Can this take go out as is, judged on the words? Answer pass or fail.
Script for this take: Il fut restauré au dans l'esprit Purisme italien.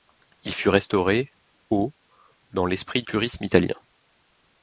pass